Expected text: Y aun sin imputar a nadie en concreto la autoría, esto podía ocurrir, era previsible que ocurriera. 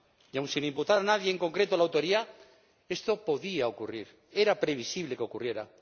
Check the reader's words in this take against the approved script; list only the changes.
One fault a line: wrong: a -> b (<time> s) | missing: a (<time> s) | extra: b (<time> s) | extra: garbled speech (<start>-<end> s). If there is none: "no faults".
no faults